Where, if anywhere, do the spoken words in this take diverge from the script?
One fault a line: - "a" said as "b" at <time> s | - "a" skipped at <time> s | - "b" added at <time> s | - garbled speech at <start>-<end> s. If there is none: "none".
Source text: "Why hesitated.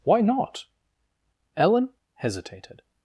- "not Ellen" added at 0.2 s